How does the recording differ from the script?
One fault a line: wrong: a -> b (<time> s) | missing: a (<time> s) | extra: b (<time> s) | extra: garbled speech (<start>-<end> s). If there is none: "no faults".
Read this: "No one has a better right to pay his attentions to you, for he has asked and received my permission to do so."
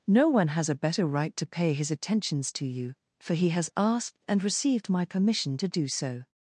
no faults